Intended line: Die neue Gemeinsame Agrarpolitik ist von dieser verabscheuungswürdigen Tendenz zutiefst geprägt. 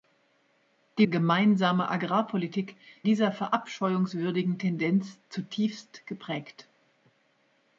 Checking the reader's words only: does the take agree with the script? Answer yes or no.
no